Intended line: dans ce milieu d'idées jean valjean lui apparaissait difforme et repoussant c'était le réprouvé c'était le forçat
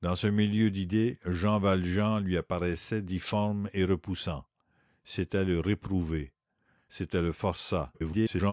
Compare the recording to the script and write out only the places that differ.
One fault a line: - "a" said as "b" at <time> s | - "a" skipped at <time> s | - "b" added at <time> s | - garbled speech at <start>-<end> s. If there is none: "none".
- garbled speech at 7.9-8.5 s